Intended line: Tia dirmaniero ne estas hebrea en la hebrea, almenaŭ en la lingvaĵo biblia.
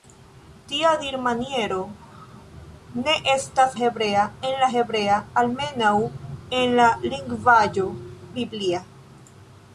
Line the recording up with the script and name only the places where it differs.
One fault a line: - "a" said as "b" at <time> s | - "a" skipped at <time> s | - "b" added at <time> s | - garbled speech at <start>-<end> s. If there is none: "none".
none